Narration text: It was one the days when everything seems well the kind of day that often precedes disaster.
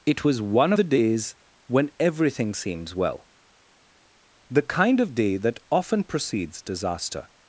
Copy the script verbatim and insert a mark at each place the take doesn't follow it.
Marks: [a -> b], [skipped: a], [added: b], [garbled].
It was one the days when everything seems well the kind of day that often precedes disaster.